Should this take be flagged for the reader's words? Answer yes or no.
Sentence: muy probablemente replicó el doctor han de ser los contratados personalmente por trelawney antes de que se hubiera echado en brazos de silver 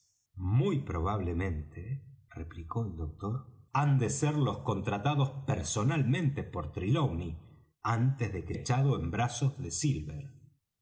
yes